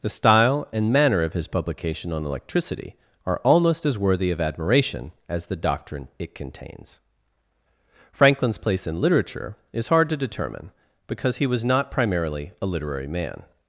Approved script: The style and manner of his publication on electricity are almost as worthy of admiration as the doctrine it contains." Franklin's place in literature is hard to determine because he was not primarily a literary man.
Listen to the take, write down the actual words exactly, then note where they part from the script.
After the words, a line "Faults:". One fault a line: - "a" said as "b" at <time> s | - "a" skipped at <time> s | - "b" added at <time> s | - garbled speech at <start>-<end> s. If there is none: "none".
The style and manner of his publication on electricity are almost as worthy of admiration as the doctrine it contains." Franklin's place in literature is hard to determine because he was not primarily a literary man.
Faults:
none